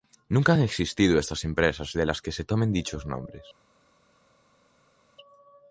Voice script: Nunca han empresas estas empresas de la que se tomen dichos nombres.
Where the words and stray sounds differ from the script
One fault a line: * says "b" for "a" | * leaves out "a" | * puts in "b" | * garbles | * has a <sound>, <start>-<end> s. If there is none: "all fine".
* says "existido" for "empresas"
* says "las" for "la"